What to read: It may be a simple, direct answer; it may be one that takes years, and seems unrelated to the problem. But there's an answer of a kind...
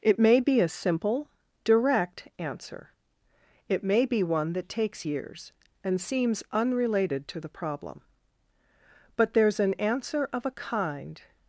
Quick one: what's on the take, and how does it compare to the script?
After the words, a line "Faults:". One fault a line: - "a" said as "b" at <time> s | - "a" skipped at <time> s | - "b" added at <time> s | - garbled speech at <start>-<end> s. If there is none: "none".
It may be a simple, direct answer; it may be one that takes years, and seems unrelated to the problem. But there's an answer of a kind...
Faults:
none